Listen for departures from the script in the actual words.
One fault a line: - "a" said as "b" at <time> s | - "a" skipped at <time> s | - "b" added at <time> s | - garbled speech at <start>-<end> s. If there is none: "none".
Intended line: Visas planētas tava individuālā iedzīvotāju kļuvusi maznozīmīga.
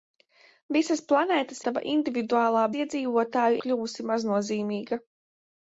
none